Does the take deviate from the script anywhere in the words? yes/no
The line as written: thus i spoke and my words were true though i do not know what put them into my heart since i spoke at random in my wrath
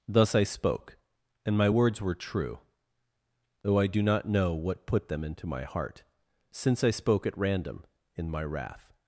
no